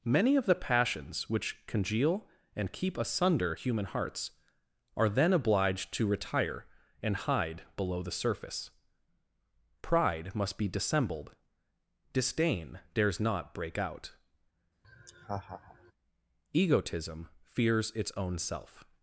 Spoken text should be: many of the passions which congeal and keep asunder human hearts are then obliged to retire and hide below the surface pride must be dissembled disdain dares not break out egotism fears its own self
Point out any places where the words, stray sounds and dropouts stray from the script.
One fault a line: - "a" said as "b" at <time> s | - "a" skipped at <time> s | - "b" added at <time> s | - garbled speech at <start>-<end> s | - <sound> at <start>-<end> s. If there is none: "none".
- laugh at 14.8-15.9 s